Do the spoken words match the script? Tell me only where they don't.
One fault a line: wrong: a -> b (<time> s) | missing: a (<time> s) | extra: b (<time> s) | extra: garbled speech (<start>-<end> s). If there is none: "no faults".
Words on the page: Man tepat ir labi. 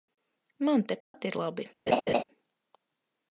no faults